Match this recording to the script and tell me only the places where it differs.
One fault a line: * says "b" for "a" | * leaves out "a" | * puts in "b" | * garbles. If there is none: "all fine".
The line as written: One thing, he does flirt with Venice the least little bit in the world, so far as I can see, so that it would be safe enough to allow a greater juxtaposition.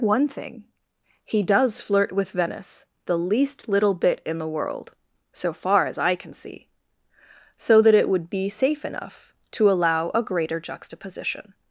all fine